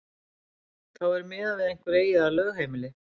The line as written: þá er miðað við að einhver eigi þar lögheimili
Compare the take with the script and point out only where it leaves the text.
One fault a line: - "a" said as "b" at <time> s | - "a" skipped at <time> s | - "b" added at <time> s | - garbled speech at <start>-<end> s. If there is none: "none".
none